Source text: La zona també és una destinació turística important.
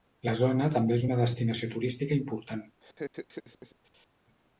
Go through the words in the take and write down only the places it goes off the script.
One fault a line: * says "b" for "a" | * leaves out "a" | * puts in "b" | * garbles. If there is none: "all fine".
all fine